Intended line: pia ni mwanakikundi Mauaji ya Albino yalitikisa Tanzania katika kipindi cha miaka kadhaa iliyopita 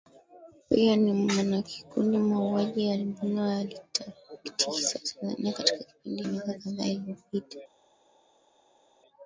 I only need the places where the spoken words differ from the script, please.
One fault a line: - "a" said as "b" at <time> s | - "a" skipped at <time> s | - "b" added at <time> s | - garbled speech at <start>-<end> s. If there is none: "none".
- "cha" skipped at 6.2 s